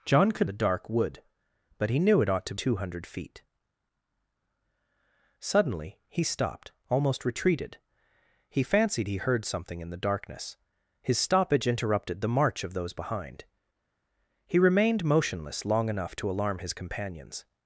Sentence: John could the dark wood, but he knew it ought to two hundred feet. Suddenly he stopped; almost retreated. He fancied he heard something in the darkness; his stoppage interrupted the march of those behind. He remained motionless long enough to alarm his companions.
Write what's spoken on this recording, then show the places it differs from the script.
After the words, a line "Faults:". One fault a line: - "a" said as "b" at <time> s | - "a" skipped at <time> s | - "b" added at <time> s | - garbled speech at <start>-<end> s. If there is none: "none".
John could the dark wood, but he knew it ought to two hundred feet. Suddenly he stopped; almost retreated. He fancied he heard something in the darkness; his stoppage interrupted the march of those behind. He remained motionless long enough to alarm his companions.
Faults:
none